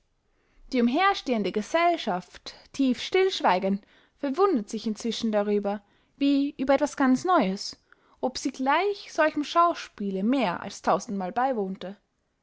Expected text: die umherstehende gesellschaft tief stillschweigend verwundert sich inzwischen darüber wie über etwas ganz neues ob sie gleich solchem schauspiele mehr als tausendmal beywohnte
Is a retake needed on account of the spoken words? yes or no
no